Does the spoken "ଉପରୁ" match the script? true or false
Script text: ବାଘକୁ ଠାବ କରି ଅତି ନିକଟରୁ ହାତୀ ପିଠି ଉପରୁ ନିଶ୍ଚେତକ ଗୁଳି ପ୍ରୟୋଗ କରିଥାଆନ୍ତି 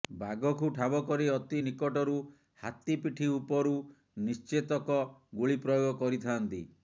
true